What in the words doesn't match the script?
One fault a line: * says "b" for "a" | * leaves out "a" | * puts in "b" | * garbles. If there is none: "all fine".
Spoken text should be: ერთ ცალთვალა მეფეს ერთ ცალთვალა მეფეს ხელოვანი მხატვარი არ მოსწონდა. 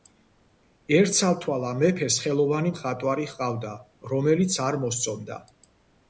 * says "ხელოვანი მხატვარი ჰყავდა რომელიც" for "ერთ ცალთვალა მეფეს ხელოვანი მხატვარი"